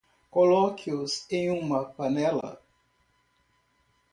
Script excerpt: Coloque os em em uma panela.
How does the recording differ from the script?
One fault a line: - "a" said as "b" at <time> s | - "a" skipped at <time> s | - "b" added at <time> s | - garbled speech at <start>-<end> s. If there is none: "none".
- "em" skipped at 1.5 s